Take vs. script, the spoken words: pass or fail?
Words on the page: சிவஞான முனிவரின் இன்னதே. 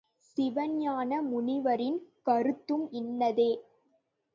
fail